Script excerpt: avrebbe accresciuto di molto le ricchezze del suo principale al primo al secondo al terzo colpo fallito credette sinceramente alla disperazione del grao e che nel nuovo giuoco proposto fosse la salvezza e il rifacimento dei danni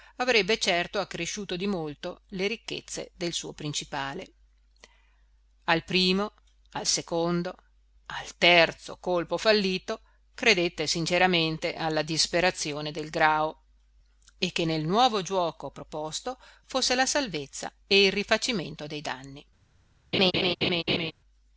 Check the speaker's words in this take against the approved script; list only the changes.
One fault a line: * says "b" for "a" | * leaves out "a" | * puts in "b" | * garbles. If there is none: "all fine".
* puts in "certo"